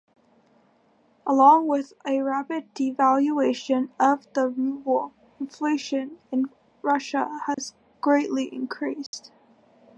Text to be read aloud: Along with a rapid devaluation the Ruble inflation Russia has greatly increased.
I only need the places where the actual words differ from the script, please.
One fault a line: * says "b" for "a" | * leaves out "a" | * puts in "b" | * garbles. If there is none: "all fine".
* puts in "of"
* puts in "in"